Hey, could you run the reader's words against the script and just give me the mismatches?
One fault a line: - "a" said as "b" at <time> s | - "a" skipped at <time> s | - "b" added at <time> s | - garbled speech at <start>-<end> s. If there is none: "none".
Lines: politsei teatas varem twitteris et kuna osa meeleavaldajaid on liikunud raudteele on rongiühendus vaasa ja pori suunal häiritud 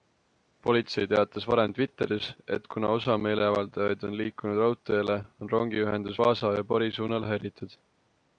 none